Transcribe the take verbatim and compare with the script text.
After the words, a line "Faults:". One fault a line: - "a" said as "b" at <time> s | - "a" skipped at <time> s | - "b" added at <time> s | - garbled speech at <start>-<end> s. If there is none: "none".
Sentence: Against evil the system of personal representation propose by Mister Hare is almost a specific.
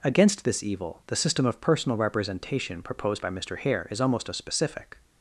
Against this evil the system of personal representation proposed by Mister Hare is almost a specific.
Faults:
- "this" added at 0.5 s
- "propose" said as "proposed" at 2.8 s